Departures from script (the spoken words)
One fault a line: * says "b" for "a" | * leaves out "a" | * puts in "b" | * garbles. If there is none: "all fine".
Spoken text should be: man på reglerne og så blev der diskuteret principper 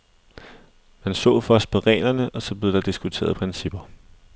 * puts in "så først"